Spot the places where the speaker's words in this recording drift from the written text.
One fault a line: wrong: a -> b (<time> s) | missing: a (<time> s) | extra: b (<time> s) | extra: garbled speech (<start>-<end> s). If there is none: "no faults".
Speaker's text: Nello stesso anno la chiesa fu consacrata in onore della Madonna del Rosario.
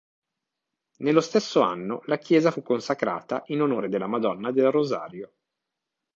no faults